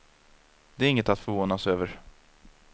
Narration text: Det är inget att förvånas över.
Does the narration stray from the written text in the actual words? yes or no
no